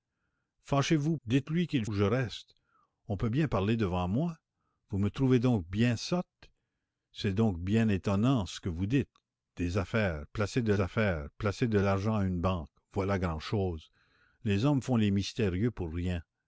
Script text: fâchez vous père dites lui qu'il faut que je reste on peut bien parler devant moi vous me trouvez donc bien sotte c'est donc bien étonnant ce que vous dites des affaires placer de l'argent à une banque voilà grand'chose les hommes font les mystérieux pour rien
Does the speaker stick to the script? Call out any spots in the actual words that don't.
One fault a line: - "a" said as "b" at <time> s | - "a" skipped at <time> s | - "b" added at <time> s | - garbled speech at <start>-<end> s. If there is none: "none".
- "père" skipped at 1.1 s
- "faut" skipped at 1.9 s
- "affaires placer de" added at 10.8 s